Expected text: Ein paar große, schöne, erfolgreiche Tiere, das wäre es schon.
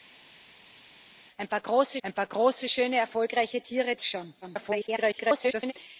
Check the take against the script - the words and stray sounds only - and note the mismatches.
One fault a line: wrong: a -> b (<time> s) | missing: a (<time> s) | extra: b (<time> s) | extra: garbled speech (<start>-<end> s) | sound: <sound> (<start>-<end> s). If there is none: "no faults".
extra: ein paar große (2.0 s)
missing: das wäre (3.9 s)
extra: garbled speech (4.4-5.7 s)